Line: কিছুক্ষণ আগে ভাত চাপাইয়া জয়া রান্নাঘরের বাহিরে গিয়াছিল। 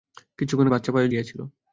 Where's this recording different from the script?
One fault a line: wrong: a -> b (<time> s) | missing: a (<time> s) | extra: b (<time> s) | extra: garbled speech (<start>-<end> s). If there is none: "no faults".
missing: আগে (0.7 s)
missing: জয়া রান্নাঘরের বাহিরে (1.1 s)